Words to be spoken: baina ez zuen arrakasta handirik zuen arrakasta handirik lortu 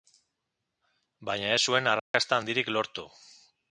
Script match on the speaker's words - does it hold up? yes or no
no